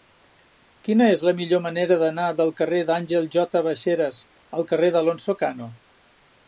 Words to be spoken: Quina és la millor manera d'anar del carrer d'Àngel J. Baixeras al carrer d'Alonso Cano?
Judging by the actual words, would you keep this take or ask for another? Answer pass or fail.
pass